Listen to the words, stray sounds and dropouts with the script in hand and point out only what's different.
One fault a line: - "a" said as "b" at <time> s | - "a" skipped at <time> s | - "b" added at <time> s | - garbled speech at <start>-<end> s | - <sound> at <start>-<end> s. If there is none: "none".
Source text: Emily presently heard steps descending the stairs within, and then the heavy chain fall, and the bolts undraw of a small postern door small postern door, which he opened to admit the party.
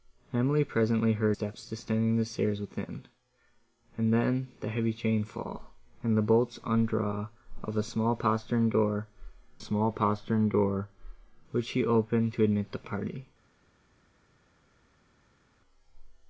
none